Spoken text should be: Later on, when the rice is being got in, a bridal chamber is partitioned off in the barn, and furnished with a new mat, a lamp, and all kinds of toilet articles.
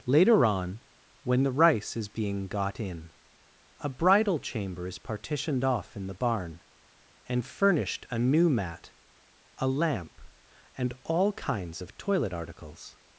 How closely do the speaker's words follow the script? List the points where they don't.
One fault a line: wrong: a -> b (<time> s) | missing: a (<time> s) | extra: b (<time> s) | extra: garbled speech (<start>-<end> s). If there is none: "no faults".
missing: with (8.1 s)